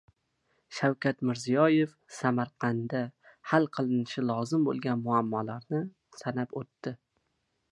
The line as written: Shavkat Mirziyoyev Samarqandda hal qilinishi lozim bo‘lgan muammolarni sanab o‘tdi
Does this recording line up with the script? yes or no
yes